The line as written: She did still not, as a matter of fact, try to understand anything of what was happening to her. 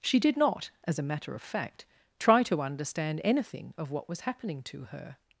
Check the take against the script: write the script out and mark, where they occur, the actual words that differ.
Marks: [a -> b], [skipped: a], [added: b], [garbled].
She did [skipped: still] not, as a matter of fact, try to understand anything of what was happening to her.